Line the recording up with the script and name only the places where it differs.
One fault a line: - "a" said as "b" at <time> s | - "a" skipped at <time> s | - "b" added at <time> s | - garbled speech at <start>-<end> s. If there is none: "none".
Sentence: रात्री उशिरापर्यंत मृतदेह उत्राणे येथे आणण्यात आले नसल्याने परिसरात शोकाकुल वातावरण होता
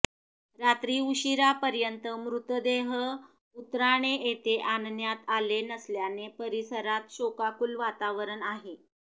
- "होता" said as "आहे" at 8.5 s